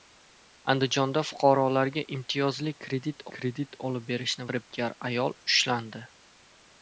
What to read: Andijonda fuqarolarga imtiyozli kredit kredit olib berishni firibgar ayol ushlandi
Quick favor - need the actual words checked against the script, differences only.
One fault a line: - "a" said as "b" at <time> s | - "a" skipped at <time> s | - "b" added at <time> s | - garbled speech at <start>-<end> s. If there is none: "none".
none